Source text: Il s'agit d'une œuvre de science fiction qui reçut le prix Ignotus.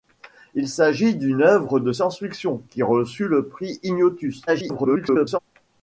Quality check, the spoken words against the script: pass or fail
fail